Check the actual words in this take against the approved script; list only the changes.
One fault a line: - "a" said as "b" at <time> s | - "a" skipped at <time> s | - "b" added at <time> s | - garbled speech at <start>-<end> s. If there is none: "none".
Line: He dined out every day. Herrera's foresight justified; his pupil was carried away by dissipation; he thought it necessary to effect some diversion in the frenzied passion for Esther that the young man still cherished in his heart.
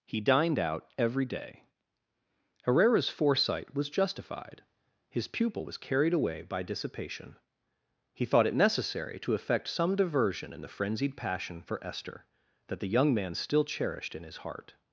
- "was" added at 3.8 s